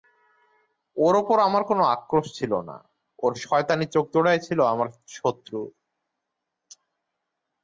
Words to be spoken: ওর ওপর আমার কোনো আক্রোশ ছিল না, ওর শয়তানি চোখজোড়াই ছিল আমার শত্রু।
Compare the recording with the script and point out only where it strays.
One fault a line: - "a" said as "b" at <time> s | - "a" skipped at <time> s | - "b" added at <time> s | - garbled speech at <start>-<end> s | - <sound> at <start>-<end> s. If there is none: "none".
none